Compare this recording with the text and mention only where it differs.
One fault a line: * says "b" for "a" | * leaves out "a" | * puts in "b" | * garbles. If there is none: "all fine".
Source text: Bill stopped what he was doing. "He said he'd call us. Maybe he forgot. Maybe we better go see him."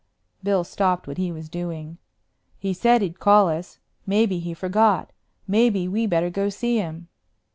all fine